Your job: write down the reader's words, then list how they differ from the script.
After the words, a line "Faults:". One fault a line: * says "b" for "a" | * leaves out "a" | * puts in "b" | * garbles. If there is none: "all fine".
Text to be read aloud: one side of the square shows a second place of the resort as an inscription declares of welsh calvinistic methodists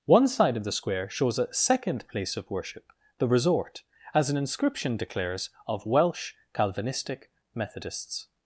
one side of the square shows a second place of worship the resort as an inscription declares of welsh calvinistic methodists
Faults:
* puts in "worship"